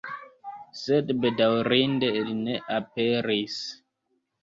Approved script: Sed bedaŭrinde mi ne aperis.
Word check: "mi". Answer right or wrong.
wrong